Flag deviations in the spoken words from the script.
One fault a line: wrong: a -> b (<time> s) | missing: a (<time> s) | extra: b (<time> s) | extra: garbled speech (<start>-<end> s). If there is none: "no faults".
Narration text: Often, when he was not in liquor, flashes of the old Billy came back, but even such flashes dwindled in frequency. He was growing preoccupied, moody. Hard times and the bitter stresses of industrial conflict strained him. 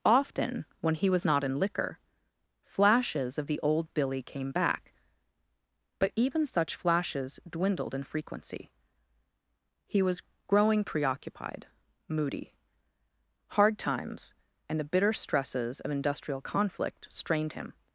no faults